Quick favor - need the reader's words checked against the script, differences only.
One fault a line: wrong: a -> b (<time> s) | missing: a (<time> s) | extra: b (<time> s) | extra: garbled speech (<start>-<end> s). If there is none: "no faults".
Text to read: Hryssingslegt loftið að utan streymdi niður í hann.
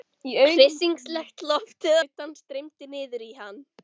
missing: að (2.0 s)